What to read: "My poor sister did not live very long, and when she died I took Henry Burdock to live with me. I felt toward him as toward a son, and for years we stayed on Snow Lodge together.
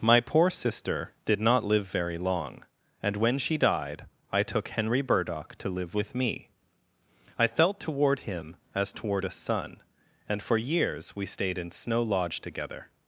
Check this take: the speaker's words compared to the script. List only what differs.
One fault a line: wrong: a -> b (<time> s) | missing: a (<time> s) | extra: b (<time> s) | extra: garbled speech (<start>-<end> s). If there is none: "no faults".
wrong: on -> in (11.6 s)